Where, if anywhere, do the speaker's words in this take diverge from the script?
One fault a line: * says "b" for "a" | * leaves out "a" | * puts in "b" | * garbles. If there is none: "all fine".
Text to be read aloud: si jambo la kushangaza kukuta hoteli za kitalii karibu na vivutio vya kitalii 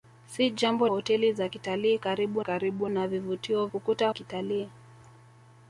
* leaves out "la kushangaza kukuta"
* puts in "karibu"
* says "kukuta" for "vya"